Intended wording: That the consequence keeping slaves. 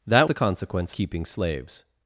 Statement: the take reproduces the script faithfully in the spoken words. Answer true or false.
true